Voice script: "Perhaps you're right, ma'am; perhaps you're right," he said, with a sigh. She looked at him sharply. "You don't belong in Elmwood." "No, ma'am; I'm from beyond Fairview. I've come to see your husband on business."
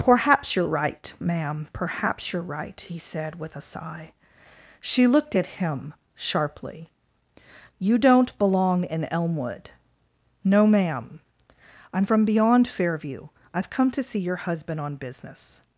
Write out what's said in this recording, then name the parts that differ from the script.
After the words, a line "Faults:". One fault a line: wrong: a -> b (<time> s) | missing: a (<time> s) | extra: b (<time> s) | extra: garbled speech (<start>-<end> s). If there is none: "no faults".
"Perhaps you're right, ma'am; perhaps you're right," he said, with a sigh. She looked at him sharply. "You don't belong in Elmwood." "No, ma'am; I'm from beyond Fairview. I've come to see your husband on business."
Faults:
no faults